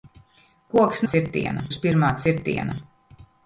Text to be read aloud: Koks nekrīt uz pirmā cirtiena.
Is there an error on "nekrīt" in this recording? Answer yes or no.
yes